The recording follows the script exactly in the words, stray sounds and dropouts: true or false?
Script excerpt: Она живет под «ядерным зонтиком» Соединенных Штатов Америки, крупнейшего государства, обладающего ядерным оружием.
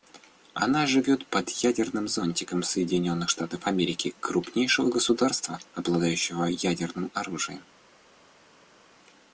true